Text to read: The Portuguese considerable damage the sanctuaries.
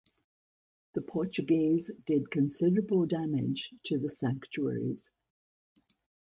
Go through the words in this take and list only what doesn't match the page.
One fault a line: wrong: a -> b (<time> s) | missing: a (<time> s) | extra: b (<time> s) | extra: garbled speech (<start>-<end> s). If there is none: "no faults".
extra: did (2.1 s)
extra: to (3.9 s)